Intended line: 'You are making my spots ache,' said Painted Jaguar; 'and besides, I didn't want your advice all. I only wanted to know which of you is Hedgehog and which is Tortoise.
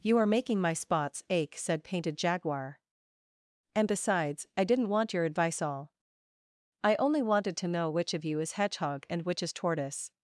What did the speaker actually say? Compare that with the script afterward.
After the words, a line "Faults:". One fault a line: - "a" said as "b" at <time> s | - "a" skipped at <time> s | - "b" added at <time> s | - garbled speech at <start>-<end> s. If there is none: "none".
'You are making my spots ache,' said Painted Jaguar; 'and besides, I didn't want your advice all. I only wanted to know which of you is Hedgehog and which is Tortoise.
Faults:
none